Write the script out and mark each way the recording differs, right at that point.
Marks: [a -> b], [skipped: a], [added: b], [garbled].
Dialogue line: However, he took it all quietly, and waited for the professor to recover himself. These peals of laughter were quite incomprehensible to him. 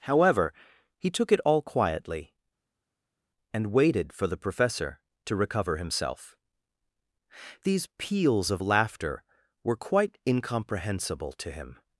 However, he took it all quietly, and waited for the professor to recover himself. These peals of laughter were quite incomprehensible to him.